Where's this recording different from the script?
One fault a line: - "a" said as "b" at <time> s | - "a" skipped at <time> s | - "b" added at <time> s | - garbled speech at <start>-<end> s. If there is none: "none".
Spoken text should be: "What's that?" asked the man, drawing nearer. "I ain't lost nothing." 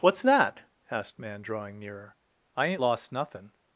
- "the" skipped at 1.2 s